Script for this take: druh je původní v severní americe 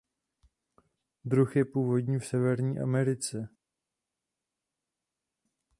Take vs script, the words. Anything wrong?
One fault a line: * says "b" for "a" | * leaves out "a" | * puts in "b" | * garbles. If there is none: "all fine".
all fine